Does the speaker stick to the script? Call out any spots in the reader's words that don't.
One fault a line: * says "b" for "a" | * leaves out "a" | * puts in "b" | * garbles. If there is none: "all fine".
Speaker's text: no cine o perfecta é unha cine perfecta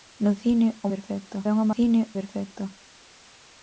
all fine